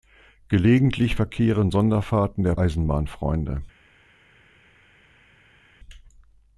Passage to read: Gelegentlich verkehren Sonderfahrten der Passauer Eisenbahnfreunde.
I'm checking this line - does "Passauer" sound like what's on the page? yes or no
no